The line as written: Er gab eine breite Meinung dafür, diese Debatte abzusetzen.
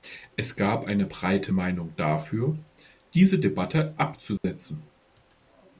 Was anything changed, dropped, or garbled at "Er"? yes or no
yes